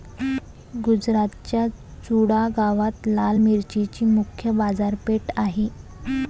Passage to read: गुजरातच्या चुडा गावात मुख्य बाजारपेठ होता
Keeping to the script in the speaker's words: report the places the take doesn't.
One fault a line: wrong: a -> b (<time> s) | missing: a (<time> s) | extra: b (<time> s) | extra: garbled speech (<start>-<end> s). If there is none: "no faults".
extra: लाल मिरचीची (3.1 s)
wrong: होता -> आहे (5.4 s)